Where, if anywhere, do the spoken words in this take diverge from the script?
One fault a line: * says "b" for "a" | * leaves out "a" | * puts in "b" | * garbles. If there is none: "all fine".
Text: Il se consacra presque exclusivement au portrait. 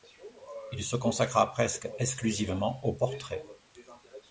all fine